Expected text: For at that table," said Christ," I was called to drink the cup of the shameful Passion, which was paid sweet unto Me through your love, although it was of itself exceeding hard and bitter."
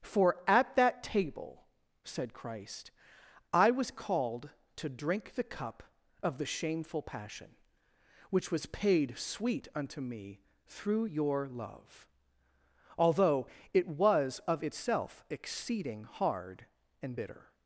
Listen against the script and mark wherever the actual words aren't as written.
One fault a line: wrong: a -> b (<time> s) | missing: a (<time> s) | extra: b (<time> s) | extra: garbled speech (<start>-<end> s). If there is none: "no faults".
no faults